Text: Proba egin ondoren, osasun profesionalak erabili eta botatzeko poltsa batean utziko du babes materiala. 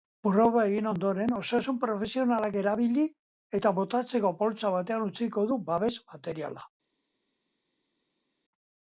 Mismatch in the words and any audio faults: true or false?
false